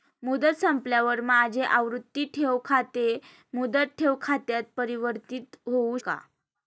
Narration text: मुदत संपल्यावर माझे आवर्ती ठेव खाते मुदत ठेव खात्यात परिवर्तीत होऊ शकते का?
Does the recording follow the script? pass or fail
fail